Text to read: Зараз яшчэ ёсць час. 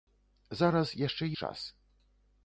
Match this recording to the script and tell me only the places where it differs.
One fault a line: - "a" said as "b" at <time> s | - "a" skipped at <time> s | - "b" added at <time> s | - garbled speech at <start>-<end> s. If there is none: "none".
- "ёсць" skipped at 1.3 s